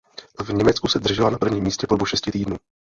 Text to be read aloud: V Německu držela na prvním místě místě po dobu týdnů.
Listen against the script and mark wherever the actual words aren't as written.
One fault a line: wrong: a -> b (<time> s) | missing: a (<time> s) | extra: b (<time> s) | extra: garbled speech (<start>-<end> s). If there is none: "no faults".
extra: se (0.9 s)
missing: místě (1.9 s)
extra: šesti (2.1 s)